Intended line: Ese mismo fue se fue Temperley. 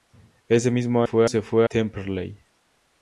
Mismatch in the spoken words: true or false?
false